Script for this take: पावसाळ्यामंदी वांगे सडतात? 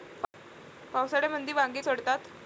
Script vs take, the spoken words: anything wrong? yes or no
no